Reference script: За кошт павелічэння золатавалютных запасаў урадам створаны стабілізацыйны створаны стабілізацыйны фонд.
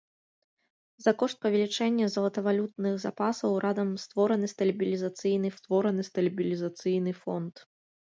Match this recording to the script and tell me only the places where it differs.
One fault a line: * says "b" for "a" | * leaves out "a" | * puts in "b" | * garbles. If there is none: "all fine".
all fine